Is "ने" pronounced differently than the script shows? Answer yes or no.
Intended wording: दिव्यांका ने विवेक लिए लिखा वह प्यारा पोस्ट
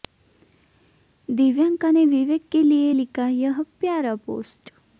no